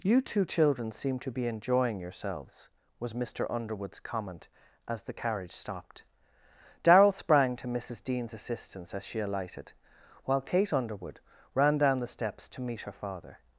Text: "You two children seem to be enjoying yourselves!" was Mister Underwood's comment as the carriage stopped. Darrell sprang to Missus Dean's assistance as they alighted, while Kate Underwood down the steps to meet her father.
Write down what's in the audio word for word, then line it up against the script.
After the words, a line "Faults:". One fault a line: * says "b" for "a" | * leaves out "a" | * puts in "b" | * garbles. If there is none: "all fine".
"You two children seem to be enjoying yourselves!" was Mister Underwood's comment as the carriage stopped. Darrell sprang to Missus Dean's assistance as she alighted, while Kate Underwood ran down the steps to meet her father.
Faults:
* says "she" for "they"
* puts in "ran"